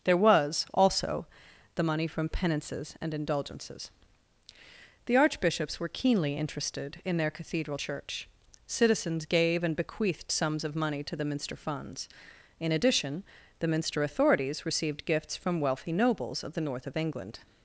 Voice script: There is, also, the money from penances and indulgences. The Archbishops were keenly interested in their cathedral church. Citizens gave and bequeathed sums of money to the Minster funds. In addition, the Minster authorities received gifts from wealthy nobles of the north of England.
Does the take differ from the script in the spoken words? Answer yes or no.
yes